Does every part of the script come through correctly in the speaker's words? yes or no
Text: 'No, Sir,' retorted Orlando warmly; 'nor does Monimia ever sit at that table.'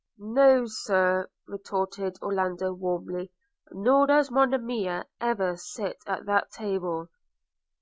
yes